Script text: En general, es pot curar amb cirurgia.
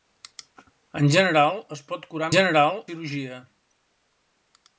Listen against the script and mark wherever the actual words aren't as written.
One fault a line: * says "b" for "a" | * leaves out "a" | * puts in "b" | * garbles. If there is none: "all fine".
* says "general" for "amb"